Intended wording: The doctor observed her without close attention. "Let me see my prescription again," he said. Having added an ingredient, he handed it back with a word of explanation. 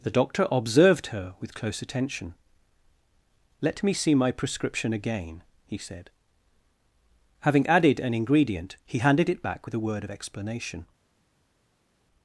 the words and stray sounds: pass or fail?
fail